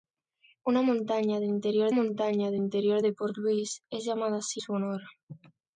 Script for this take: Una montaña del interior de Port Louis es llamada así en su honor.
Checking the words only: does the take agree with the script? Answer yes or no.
no